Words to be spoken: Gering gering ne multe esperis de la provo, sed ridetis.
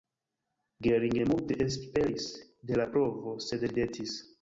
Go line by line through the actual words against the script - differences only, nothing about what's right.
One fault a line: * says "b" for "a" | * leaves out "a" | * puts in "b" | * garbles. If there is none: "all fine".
* leaves out "gering"